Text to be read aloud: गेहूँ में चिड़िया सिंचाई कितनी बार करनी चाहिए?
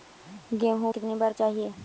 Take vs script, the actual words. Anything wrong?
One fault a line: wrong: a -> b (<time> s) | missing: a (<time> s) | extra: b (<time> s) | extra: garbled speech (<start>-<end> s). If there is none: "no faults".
missing: में चिड़िया सिंचाई (0.9 s)
missing: करनी (1.3 s)